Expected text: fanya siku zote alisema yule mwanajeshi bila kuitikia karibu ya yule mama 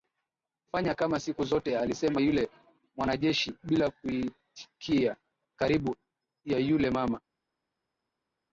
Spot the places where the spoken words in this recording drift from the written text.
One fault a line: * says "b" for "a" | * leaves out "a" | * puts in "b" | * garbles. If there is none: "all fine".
* puts in "kama"